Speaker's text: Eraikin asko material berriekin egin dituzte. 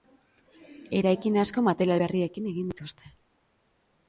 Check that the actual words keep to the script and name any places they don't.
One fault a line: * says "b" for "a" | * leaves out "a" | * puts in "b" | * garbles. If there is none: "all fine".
all fine